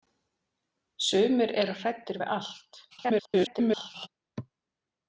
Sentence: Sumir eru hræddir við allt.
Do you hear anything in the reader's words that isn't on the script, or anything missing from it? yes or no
yes